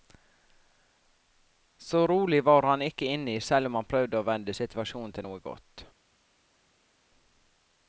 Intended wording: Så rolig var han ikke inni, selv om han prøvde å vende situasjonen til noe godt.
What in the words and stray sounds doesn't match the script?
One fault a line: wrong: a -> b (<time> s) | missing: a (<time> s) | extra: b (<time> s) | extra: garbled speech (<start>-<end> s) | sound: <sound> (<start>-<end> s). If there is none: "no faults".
no faults